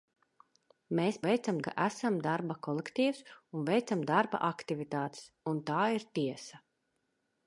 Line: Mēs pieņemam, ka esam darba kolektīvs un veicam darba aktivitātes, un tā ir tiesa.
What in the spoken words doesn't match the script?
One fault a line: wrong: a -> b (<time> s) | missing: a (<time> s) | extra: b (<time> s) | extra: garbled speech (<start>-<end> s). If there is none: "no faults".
wrong: pieņemam -> veicam (1.3 s)